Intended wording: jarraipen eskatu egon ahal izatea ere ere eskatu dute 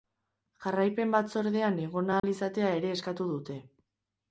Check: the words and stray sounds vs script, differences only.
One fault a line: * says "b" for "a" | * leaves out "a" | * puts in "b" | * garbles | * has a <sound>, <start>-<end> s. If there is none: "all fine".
* says "batzordean" for "eskatu"
* has a dropout, 2.2-2.2 s
* leaves out "ere"